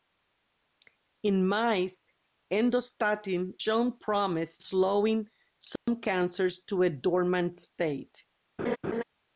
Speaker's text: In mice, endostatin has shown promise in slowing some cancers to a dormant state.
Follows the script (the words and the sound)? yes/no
no